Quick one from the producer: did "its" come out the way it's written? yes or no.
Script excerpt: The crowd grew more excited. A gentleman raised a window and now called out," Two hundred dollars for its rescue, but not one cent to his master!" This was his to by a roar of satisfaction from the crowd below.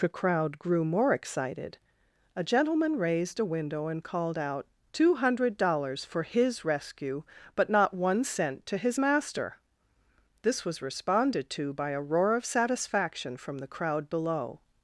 no